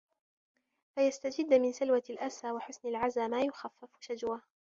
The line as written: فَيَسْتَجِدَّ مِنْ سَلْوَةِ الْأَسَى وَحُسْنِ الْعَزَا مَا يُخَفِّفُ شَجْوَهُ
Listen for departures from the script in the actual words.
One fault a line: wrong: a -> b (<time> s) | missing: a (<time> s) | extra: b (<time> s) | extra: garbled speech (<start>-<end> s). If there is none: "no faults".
no faults